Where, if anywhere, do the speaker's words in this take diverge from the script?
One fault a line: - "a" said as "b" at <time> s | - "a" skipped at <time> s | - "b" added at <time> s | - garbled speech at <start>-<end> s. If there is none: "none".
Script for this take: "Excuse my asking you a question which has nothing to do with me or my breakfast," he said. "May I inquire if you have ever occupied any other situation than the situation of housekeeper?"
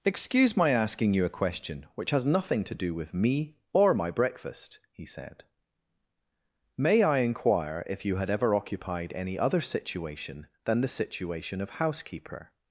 - "have" said as "had" at 8.2 s